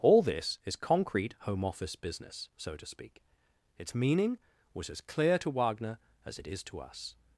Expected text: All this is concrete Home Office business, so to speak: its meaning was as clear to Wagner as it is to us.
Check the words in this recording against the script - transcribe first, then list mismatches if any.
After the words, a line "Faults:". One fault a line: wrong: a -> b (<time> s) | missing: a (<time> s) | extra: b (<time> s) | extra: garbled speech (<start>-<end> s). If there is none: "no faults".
All this is concrete Home Office business, so to speak: its meaning was as clear to Wagner as it is to us.
Faults:
no faults